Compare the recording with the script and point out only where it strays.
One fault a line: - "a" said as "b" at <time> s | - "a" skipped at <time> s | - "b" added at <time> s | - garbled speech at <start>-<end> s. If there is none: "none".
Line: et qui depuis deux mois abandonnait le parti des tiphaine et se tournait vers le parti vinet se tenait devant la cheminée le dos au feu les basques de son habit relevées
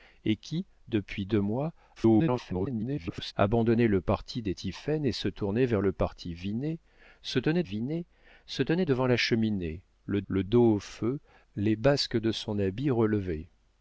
- garbled speech at 2.0-3.3 s
- "vinet se tenait" added at 7.6 s
- "le" added at 10.3 s